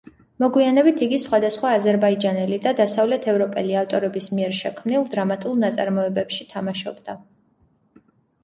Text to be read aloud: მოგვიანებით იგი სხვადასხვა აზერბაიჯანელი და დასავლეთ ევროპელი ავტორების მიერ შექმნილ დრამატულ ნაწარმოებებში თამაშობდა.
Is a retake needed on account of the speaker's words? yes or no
no